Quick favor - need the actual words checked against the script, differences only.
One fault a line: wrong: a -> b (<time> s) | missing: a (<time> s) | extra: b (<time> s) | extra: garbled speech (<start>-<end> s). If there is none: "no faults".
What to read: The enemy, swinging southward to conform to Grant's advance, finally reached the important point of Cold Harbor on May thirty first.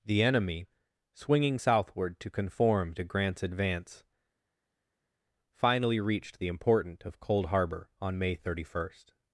missing: point (7.0 s)